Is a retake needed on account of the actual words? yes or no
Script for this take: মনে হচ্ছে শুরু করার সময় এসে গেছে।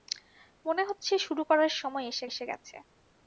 yes